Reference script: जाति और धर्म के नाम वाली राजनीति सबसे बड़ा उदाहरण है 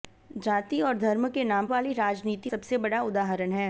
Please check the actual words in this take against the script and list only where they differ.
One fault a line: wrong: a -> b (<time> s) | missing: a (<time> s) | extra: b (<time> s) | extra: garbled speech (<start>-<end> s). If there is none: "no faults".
no faults